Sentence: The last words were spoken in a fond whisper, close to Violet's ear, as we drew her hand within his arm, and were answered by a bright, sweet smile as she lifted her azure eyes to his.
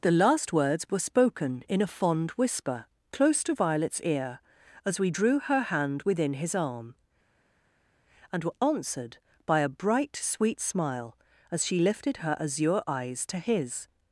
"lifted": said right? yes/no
yes